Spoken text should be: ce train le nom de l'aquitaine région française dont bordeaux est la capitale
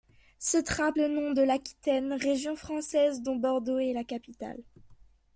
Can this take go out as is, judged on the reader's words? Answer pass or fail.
pass